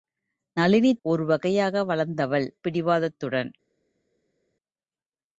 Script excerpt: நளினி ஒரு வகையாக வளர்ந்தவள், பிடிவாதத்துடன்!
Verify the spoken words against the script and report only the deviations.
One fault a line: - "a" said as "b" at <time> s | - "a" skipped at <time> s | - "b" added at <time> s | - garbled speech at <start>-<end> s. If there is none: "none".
none